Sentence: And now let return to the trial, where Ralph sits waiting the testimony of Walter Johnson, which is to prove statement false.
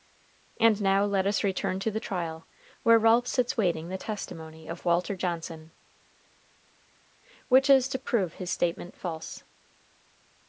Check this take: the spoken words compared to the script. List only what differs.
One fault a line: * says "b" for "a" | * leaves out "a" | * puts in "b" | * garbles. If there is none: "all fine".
* puts in "us"
* puts in "his"